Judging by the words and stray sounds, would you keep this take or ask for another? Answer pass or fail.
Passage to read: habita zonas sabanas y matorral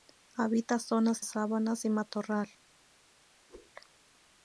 fail